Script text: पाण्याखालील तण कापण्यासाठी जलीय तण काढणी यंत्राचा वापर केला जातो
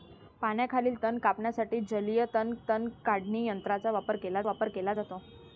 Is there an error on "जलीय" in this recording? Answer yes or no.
no